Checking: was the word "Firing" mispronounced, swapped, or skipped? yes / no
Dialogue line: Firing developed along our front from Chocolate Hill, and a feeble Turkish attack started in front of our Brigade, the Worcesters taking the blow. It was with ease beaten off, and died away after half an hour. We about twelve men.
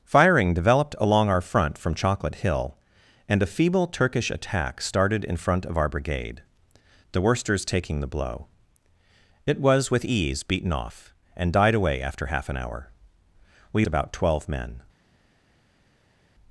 no